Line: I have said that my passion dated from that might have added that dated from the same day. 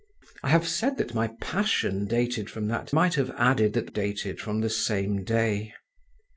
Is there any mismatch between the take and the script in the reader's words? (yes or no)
no